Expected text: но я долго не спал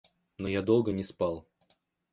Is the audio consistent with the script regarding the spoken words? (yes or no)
yes